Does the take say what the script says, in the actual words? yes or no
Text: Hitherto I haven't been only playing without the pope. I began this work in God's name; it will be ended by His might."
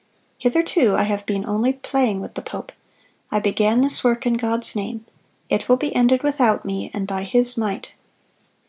no